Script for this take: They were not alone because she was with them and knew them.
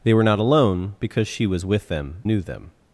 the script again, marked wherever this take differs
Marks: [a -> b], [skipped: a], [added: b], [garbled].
They were not alone because she was with them [skipped: and] knew them.